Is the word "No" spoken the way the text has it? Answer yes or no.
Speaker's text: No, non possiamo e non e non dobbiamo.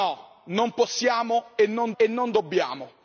yes